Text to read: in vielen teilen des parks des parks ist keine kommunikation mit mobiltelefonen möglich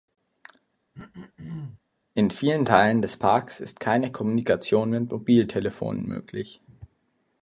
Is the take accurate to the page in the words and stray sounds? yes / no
no